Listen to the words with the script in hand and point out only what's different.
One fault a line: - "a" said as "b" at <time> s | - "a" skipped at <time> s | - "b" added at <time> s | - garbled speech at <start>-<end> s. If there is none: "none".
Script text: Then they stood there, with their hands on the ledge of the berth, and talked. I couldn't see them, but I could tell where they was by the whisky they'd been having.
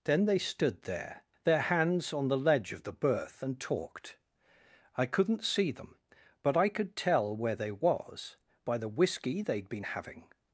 - "with" skipped at 1.2 s